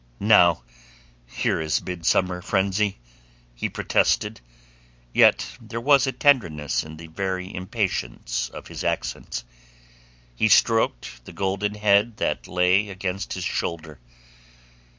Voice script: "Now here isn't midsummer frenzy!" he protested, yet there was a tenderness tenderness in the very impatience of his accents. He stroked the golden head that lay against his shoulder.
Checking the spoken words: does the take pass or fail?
fail